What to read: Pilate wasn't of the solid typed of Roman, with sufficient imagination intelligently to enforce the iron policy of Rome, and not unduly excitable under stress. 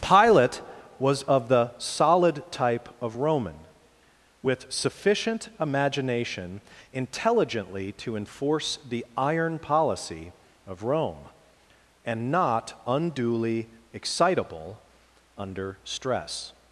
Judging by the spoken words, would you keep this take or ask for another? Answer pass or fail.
fail